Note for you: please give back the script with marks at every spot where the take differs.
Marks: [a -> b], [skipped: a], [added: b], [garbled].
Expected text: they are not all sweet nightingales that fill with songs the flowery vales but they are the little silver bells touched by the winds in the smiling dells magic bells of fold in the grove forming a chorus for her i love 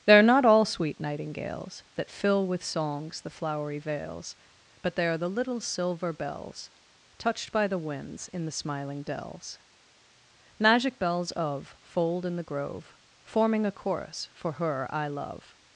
they are not all sweet nightingales that fill with songs the flowery vales but they are the little silver bells touched by the winds in the smiling dells magic bells of fold in the grove forming a chorus for her i love